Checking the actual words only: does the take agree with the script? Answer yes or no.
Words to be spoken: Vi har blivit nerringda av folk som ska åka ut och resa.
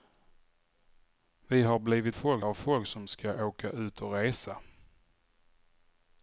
no